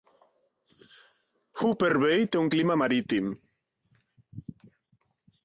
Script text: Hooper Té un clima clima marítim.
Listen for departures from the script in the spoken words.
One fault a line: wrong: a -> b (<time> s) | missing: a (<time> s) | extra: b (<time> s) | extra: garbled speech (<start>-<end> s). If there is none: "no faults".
extra: Bay (2.0 s)
missing: clima (2.8 s)